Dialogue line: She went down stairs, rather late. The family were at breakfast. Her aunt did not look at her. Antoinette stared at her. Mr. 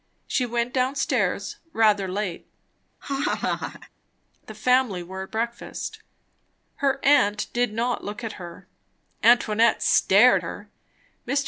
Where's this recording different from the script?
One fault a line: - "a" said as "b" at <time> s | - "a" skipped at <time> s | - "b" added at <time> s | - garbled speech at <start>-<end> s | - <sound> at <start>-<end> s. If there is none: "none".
- laugh at 3.0-3.9 s
- "at" skipped at 10.4 s